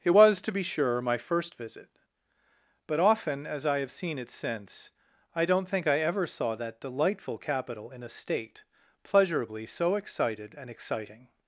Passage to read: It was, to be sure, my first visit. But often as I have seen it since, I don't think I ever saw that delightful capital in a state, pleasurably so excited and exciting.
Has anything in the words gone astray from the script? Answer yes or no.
no